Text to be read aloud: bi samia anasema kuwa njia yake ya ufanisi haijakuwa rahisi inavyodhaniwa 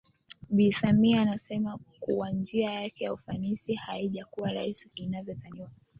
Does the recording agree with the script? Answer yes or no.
yes